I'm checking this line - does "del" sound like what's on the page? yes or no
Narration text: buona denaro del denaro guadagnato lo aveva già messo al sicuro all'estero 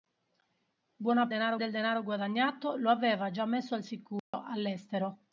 yes